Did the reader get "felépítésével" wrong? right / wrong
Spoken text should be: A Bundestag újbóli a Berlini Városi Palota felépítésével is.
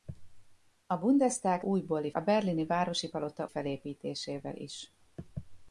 right